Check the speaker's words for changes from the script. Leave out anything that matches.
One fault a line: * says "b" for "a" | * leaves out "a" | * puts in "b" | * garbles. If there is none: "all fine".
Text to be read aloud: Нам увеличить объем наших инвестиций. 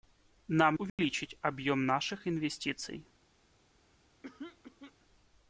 all fine